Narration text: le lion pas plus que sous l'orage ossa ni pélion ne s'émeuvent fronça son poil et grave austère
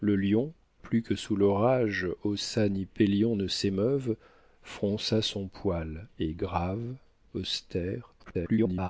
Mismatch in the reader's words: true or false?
true